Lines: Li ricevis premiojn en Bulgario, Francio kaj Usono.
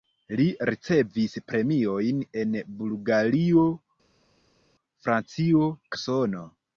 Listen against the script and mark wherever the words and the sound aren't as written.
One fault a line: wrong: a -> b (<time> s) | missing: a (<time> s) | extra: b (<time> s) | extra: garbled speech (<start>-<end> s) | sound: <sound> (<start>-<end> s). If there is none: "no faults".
missing: kaj (5.7 s)